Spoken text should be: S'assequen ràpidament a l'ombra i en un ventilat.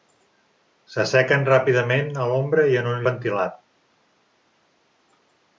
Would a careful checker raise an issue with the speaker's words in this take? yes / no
no